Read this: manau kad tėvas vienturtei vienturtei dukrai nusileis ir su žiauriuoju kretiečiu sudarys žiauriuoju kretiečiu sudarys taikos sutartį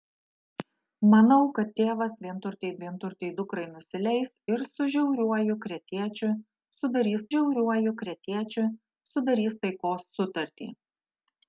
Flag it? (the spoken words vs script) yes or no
no